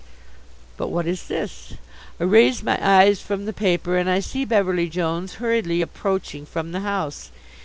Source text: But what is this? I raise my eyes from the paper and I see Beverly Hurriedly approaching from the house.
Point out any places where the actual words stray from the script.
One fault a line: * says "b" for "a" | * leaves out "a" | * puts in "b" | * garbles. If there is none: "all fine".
* puts in "Jones"